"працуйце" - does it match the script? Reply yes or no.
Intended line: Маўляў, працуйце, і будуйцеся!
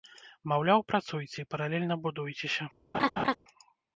yes